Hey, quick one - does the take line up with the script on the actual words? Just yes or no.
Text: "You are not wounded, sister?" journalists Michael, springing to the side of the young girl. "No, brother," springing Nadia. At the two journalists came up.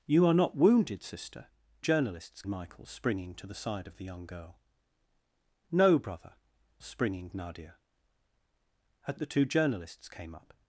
yes